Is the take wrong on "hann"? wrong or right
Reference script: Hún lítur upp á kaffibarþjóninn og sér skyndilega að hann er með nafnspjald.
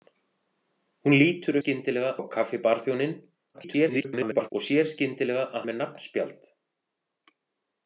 wrong